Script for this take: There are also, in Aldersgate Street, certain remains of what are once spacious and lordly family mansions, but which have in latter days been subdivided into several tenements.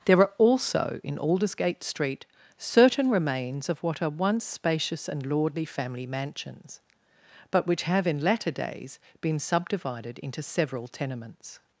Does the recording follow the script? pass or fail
pass